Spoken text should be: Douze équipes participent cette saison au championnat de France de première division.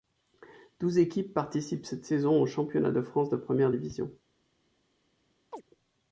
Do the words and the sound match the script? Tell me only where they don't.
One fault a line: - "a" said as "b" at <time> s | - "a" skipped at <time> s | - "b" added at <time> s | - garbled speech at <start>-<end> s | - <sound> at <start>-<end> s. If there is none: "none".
- chirp at 5.5-5.6 s